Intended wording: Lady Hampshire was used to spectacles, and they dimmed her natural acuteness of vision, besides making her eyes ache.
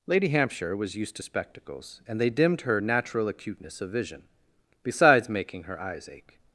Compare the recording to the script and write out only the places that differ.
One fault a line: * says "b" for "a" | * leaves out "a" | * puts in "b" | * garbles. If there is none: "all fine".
all fine